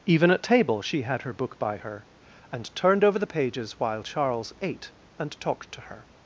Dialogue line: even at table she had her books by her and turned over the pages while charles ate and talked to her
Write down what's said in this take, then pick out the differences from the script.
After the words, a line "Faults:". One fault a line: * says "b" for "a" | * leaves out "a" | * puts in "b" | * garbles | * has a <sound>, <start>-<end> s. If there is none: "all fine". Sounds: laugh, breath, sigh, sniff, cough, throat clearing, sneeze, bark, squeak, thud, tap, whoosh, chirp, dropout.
even at table she had her book by her and turned over the pages while charles ate and talked to her
Faults:
* says "book" for "books"